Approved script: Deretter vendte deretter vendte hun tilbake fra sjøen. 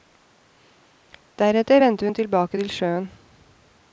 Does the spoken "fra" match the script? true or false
false